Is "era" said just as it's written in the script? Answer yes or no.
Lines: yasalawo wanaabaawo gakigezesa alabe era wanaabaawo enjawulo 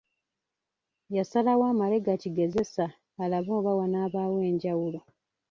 no